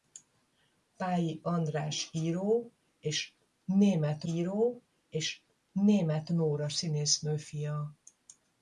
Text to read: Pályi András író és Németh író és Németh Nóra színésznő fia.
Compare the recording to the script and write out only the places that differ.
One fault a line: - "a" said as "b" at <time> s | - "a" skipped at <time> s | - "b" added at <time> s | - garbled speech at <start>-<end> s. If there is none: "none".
none